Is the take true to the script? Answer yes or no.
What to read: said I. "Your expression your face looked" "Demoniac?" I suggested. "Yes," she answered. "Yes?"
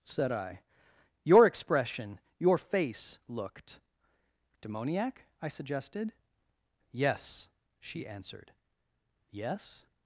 yes